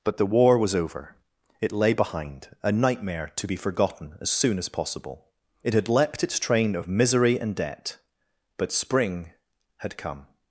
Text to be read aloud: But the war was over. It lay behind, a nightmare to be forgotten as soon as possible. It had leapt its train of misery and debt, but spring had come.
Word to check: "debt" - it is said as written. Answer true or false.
true